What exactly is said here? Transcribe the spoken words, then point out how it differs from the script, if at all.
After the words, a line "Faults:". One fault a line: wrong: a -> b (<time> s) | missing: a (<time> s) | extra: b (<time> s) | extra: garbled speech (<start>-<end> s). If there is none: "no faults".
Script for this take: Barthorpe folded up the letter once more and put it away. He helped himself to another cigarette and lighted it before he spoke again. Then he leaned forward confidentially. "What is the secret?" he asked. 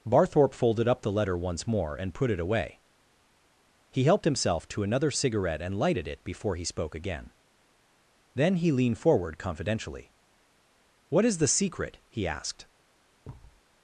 Barthorpe folded up the letter once more and put it away. He helped himself to another cigarette and lighted it before he spoke again. Then he leaned forward confidentially. "What is the secret?" he asked.
Faults:
no faults